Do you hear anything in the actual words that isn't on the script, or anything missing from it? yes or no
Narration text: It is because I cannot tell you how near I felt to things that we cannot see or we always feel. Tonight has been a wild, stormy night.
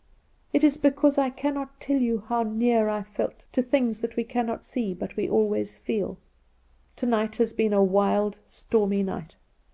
yes